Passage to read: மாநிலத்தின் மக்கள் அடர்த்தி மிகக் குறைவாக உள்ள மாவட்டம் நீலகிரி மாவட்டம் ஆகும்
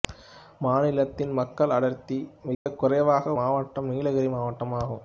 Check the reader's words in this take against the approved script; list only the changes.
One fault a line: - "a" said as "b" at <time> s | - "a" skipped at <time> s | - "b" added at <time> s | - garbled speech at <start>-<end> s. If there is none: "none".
- "உள்ள" skipped at 3.3 s